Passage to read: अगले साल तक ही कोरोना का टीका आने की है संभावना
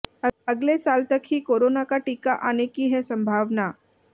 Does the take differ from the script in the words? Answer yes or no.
no